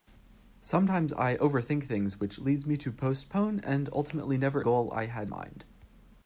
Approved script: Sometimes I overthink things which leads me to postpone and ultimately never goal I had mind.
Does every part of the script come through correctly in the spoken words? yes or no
yes